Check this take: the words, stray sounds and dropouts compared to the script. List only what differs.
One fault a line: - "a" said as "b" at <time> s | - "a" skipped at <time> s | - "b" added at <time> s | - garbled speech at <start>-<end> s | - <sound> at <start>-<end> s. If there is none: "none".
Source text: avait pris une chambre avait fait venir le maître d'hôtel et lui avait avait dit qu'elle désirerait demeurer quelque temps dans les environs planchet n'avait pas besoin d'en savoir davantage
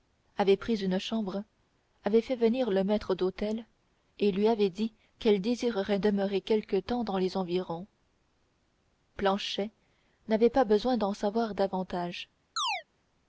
- "avait" skipped at 4.7 s
- chirp at 12.6-12.8 s